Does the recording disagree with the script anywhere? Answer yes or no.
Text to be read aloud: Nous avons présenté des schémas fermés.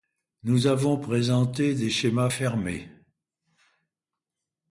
no